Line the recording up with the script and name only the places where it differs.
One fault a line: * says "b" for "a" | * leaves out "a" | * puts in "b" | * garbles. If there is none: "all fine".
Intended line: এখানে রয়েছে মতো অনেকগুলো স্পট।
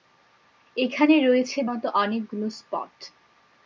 all fine